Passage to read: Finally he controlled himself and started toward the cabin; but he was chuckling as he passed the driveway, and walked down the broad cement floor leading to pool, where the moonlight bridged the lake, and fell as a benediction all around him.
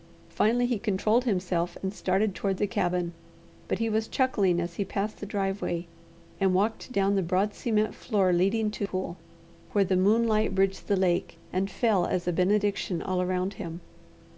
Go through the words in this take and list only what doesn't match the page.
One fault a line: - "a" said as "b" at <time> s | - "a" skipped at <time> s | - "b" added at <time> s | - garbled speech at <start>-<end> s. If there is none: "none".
none